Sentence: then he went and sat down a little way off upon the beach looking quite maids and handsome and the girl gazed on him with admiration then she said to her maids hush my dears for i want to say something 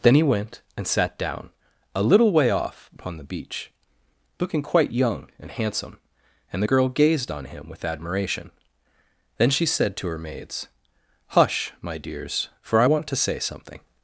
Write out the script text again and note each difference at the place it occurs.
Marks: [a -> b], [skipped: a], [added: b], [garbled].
then he went and sat down a little way off upon the beach looking quite [maids -> young] and handsome and the girl gazed on him with admiration then she said to her maids hush my dears for i want to say something